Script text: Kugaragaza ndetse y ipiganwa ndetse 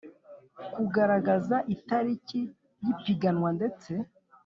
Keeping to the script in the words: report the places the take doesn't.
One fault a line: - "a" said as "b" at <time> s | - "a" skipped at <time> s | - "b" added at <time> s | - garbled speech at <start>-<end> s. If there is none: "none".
- "ndetse" said as "itariki" at 1.7 s